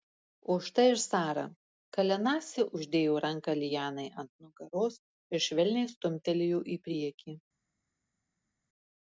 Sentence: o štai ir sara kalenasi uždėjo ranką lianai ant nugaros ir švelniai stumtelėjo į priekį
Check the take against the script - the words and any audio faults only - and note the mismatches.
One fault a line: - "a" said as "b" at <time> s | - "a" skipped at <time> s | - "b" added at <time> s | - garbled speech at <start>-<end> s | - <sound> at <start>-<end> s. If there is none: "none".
none